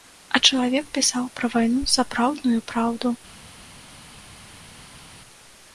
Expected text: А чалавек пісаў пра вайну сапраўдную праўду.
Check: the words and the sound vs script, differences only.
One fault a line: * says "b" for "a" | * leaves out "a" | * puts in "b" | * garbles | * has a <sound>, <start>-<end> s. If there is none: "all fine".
all fine